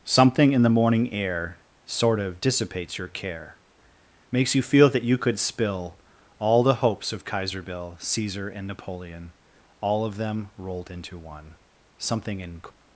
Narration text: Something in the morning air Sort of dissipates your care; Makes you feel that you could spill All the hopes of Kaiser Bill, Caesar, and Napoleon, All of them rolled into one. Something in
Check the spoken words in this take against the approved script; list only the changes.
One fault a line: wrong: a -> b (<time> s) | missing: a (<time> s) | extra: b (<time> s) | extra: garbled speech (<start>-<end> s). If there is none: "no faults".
no faults